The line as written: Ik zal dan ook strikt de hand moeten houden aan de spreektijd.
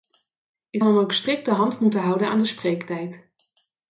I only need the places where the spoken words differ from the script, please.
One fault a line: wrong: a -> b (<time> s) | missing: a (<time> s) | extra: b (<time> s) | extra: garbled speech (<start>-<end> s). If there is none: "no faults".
missing: zal (0.8 s)